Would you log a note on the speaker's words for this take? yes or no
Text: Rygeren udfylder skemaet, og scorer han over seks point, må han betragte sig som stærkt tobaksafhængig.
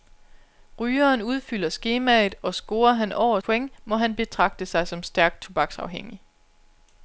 yes